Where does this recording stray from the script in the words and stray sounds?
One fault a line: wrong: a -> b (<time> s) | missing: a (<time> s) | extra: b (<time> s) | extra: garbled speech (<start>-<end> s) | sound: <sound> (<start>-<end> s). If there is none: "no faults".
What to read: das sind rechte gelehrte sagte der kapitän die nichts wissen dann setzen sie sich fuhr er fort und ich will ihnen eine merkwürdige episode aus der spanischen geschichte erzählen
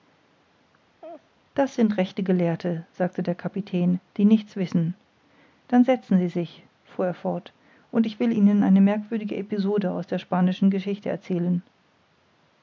sound: laugh (1.0-1.3 s)